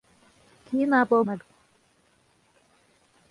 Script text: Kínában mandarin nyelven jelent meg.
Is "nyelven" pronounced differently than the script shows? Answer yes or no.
yes